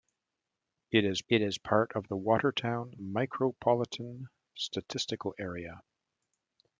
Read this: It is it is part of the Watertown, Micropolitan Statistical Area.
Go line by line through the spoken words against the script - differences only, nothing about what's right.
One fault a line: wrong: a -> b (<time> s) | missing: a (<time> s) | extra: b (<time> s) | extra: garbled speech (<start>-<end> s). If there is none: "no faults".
no faults